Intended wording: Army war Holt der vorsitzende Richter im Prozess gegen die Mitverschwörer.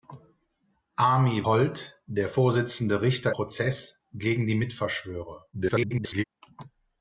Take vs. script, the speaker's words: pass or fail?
fail